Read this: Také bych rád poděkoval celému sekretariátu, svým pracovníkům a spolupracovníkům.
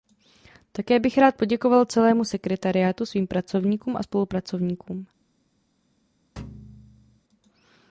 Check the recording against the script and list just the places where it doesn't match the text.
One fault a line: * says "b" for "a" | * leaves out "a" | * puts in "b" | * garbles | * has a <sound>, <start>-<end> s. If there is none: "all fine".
* has a thud, 6.4-7.2 s